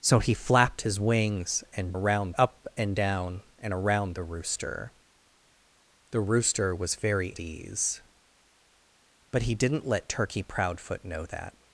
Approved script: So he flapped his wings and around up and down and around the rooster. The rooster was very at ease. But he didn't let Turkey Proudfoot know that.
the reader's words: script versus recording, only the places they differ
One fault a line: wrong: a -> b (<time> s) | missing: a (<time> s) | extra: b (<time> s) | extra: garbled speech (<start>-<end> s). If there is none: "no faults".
no faults